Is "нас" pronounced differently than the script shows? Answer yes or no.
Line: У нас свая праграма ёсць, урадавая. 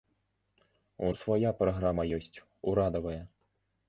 yes